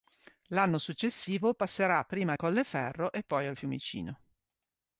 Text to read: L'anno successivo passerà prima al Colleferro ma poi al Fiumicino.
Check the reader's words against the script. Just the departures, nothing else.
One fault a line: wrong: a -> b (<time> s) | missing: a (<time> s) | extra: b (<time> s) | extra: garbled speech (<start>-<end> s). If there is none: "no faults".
wrong: ma -> e (3.1 s)